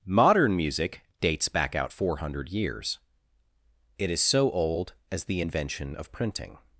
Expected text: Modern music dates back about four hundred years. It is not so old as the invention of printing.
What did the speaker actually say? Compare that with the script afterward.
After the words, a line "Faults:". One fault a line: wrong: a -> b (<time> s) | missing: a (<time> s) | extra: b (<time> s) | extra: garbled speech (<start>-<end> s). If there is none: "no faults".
Modern music dates back out four hundred years. It is so old as the invention of printing.
Faults:
wrong: about -> out (1.8 s)
missing: not (4.2 s)